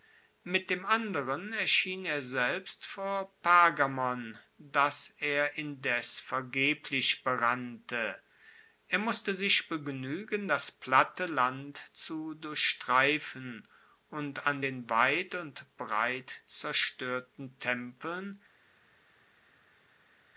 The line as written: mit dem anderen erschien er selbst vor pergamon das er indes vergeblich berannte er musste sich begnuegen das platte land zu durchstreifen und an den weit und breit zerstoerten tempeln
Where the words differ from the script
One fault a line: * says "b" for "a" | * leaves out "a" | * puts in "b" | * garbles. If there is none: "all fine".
all fine